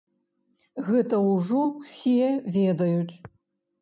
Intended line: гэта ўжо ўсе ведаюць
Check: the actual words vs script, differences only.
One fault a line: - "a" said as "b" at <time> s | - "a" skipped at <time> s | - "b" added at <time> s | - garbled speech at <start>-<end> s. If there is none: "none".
none